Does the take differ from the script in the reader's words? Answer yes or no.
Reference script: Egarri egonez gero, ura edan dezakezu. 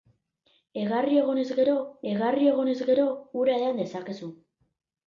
yes